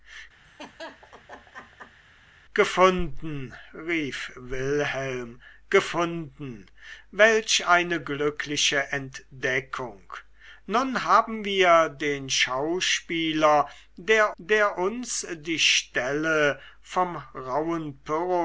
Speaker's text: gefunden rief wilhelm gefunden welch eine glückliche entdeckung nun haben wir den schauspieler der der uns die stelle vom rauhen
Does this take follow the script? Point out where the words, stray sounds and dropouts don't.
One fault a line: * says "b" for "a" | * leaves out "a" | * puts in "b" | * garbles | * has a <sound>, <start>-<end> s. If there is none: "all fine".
* has a laugh, 0.4-2.0 s